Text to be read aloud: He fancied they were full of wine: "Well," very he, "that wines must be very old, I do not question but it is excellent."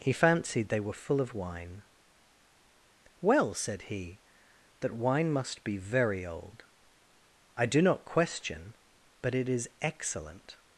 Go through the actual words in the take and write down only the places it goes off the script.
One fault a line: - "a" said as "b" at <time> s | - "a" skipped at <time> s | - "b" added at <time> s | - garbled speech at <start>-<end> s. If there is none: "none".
- "very" said as "said" at 3.5 s
- "wines" said as "wine" at 4.9 s